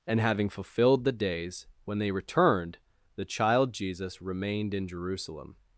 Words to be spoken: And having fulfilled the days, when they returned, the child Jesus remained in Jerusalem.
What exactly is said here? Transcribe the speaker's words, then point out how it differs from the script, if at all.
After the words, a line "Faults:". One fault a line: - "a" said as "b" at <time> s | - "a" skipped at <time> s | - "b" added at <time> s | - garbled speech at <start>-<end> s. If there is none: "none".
And having fulfilled the days, when they returned, the child Jesus remained in Jerusalem.
Faults:
none